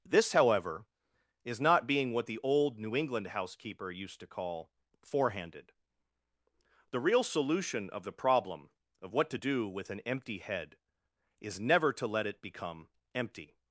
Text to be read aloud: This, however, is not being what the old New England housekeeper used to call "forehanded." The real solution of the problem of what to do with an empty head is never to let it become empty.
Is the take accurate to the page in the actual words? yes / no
yes